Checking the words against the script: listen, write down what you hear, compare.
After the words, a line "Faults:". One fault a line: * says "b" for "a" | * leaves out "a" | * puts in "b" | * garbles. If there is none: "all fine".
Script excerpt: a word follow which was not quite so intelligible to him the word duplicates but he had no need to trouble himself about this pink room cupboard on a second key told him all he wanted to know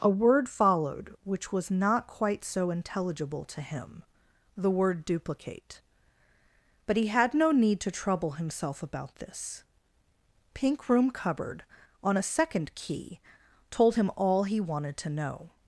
a word followed which was not quite so intelligible to him the word duplicate but he had no need to trouble himself about this pink room cupboard on a second key told him all he wanted to know
Faults:
* says "followed" for "follow"
* says "duplicate" for "duplicates"